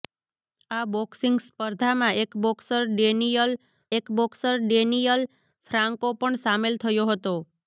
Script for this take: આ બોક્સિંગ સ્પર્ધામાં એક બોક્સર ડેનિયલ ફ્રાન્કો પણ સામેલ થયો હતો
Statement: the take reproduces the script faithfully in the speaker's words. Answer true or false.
false